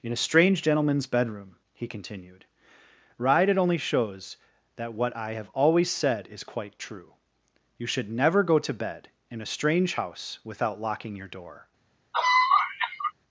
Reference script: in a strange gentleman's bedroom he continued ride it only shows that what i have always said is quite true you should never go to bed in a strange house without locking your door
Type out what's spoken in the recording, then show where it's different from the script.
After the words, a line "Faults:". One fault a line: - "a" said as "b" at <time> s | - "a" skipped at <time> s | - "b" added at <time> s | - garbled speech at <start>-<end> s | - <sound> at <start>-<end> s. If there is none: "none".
in a strange gentleman's bedroom he continued ride it only shows that what i have always said is quite true you should never go to bed in a strange house without locking your door
Faults:
- cough at 12.1-13.1 s